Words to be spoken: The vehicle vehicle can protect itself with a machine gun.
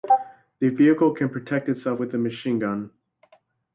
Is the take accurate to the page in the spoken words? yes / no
no